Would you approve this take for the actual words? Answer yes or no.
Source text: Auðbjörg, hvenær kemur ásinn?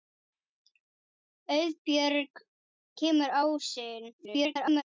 no